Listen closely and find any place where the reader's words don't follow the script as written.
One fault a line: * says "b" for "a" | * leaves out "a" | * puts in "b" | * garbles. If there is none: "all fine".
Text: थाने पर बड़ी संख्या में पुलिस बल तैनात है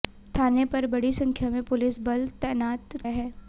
all fine